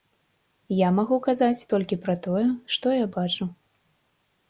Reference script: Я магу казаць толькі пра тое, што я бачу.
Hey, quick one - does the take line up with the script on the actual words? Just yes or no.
yes